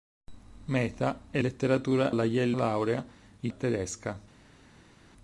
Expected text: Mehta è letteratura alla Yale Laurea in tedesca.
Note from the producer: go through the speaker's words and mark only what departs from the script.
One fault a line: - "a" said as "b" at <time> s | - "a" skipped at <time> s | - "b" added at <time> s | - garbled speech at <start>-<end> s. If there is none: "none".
none